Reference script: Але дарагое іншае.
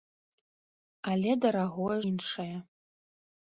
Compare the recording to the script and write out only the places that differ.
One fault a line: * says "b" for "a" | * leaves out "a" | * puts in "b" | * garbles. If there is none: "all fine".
all fine